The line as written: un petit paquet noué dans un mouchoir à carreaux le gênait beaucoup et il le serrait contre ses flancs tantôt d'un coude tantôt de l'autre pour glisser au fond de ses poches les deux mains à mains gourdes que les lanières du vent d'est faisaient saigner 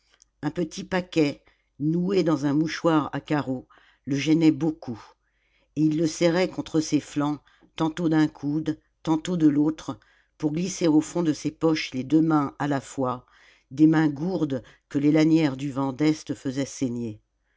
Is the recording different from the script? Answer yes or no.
yes